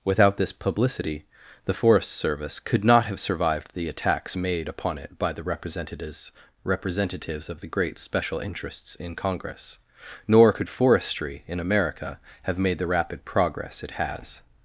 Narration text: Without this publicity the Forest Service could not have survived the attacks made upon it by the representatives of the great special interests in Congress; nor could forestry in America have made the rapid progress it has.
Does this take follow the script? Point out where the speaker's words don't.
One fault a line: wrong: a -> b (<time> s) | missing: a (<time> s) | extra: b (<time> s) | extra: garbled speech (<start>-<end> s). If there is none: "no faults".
extra: representatives (6.6 s)